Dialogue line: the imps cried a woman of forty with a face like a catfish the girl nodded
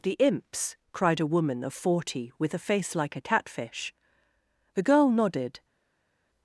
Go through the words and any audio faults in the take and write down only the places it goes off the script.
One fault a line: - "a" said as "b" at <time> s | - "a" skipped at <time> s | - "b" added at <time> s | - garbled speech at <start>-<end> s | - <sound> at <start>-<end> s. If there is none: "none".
none